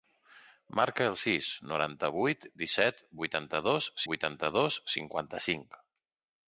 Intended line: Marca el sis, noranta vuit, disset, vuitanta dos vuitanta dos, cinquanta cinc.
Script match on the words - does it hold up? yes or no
yes